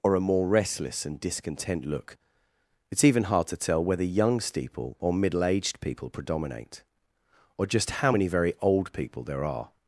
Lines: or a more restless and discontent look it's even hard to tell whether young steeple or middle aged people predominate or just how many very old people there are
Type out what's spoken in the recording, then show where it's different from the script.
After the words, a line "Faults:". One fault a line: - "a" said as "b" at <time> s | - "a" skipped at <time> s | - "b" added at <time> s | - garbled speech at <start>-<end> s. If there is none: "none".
or a more restless and discontent look it's even hard to tell whether young steeple or middle aged people predominate or just how many very old people there are
Faults:
none